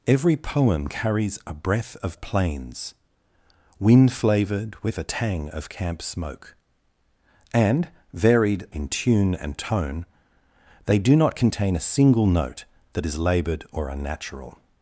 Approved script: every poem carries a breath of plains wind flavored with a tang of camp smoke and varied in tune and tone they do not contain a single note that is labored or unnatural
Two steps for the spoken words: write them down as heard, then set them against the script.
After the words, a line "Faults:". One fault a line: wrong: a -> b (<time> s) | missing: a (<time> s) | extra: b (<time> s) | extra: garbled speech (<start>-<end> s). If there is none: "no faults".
every poem carries a breath of plains wind flavored with a tang of camp smoke and varied in tune and tone they do not contain a single note that is labored or unnatural
Faults:
no faults